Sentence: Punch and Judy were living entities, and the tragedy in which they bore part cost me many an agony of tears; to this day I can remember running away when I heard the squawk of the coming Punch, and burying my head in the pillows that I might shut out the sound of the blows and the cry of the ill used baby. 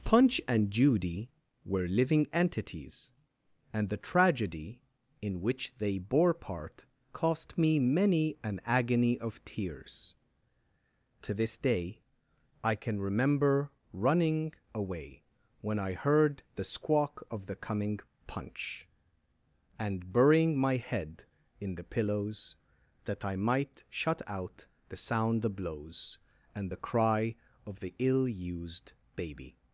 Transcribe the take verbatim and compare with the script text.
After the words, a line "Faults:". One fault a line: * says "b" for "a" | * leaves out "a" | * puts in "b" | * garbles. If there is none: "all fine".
Punch and Judy were living entities, and the tragedy in which they bore part cost me many an agony of tears; to this day I can remember running away when I heard the squawk of the coming Punch, and burying my head in the pillows that I might shut out the sound the blows and the cry of the ill used baby.
Faults:
* leaves out "of"